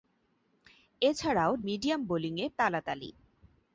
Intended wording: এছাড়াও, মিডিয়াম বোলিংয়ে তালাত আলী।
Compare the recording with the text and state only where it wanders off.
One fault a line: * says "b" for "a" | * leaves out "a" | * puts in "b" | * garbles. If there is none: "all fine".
all fine